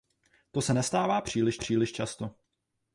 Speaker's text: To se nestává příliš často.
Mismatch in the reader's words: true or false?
true